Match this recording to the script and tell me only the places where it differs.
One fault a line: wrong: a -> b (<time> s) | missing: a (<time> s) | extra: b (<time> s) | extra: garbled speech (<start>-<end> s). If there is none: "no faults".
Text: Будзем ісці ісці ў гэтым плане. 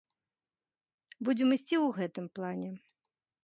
missing: ісці (1.8 s)